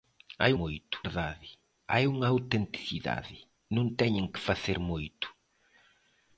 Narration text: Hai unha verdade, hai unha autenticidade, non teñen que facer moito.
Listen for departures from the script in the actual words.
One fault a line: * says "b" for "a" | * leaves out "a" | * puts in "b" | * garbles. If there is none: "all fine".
* says "moito" for "unha"